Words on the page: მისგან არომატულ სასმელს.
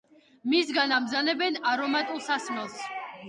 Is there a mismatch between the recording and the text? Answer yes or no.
yes